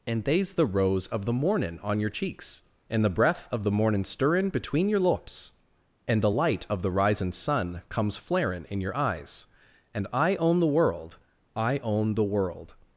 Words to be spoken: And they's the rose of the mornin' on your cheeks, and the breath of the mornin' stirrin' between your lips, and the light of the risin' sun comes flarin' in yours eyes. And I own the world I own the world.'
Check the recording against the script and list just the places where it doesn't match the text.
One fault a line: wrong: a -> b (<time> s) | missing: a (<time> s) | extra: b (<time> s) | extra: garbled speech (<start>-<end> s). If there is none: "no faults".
wrong: yours -> your (8.8 s)